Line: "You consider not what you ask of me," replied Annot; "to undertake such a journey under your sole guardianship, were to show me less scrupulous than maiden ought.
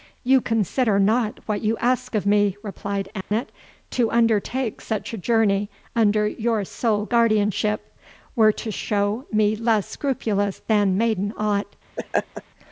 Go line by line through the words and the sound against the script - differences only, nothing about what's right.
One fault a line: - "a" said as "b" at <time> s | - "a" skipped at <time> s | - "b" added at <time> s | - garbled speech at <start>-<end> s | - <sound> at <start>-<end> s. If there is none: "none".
- dropout at 3.2-3.3 s
- laugh at 12.0-12.4 s